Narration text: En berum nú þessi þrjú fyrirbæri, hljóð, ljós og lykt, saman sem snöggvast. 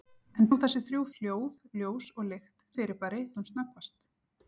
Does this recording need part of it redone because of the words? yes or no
yes